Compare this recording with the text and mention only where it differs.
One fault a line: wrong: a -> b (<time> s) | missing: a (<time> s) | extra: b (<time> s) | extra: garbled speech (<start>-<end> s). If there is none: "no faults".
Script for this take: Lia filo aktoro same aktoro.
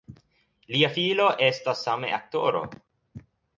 wrong: aktoro -> estas (1.5 s)